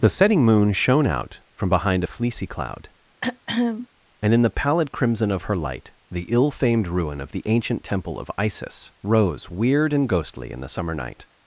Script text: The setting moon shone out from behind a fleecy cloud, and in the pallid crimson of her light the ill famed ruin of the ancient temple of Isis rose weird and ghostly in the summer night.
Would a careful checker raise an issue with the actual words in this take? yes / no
no